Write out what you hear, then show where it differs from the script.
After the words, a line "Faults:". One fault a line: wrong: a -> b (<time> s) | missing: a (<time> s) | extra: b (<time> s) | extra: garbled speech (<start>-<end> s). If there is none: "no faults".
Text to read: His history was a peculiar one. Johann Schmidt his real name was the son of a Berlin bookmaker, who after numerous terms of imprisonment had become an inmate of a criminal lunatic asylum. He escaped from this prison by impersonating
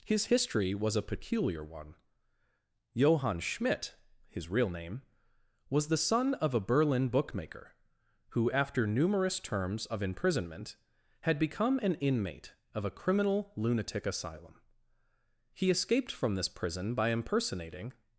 His history was a peculiar one. Johann Schmidt his real name was the son of a Berlin bookmaker, who after numerous terms of imprisonment had become an inmate of a criminal lunatic asylum. He escaped from this prison by impersonating
Faults:
no faults